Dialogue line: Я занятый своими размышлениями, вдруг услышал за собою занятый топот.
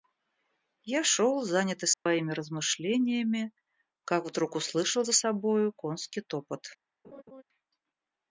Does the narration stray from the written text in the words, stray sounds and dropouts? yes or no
yes